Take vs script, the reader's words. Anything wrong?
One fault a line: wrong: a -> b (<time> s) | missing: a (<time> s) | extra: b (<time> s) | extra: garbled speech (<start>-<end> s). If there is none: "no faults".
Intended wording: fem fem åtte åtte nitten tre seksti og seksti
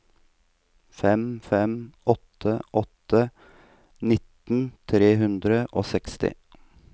wrong: seksti -> hundre (5.2 s)